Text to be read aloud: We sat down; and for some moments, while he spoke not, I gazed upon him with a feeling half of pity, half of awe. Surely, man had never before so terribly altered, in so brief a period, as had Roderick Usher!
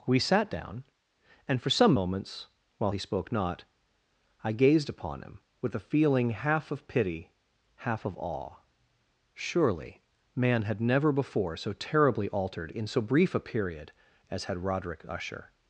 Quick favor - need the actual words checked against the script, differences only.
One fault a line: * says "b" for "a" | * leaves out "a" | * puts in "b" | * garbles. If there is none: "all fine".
all fine